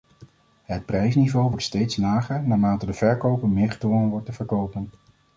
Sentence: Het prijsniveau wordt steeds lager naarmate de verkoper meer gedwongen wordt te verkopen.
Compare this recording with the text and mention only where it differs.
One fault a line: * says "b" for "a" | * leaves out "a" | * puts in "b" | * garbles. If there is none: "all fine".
all fine